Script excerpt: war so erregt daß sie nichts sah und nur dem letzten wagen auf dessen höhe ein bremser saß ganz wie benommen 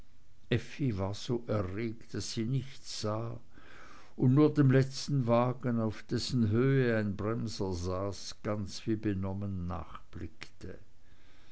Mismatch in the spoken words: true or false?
false